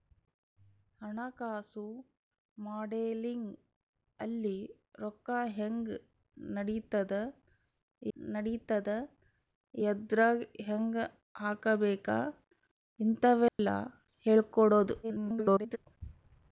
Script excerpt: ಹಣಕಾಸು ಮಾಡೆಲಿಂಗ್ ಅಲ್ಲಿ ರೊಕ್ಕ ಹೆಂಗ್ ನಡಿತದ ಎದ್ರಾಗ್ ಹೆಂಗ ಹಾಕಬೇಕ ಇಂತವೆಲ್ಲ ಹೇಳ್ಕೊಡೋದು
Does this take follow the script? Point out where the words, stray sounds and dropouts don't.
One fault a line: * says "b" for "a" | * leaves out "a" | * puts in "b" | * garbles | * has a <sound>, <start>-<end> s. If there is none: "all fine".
* puts in "ನಡಿತದ"
* has a dropout, 13.5-13.6 s
* garbles